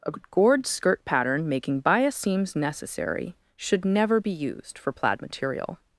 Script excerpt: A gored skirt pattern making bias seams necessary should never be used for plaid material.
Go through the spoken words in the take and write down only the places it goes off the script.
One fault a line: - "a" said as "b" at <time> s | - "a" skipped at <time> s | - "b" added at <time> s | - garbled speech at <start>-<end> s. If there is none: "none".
none